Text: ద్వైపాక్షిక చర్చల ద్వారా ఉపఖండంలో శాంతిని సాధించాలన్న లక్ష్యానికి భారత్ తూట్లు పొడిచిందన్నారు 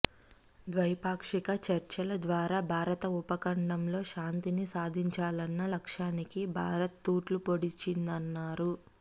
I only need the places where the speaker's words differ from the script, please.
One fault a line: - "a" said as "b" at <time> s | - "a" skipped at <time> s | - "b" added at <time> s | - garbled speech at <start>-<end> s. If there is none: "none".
- "భారత" added at 2.7 s